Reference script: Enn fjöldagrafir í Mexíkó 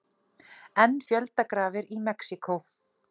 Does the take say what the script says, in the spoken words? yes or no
yes